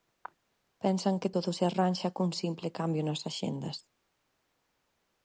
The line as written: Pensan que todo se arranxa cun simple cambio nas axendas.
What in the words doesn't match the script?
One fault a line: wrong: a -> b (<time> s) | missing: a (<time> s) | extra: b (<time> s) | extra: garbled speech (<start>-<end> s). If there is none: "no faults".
no faults